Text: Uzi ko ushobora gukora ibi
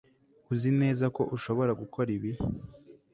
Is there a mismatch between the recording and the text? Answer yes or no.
yes